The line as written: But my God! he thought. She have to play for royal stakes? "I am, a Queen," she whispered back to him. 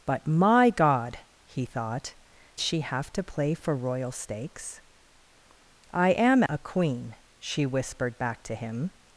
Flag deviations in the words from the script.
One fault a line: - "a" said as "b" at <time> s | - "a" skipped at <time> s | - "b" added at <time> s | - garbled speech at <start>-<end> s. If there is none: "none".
none